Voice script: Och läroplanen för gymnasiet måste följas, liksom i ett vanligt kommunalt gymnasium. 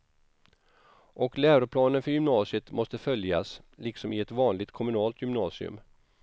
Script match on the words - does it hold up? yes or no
yes